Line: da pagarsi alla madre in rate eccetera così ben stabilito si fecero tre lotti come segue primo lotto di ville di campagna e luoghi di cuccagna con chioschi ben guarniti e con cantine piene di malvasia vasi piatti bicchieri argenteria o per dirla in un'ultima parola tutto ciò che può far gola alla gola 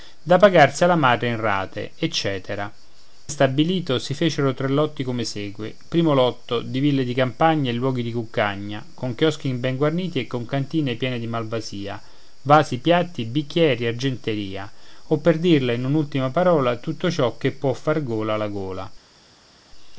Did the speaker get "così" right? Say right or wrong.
wrong